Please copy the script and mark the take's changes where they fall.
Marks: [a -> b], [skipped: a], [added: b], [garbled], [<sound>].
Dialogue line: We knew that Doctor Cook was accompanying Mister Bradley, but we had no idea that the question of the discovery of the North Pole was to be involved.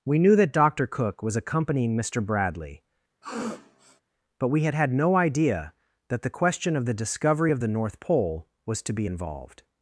We knew that Doctor Cook was accompanying Mister Bradley, [sniff] but we had [added: had] no idea that the question of the discovery of the North Pole was to be involved.